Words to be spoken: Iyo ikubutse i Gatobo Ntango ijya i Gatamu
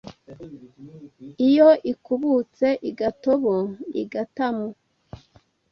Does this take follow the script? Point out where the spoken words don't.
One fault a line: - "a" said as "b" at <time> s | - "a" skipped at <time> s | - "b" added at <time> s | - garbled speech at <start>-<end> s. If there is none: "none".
- "Ntango ijya" skipped at 3.5 s